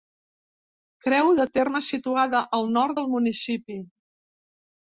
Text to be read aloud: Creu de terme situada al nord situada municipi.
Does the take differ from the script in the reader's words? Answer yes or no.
yes